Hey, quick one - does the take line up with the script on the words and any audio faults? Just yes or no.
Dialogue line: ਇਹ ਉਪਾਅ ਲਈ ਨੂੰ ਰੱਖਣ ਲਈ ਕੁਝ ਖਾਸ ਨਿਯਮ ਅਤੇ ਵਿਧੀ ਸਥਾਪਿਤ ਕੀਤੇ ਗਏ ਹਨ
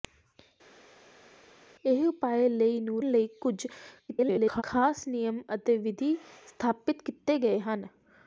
no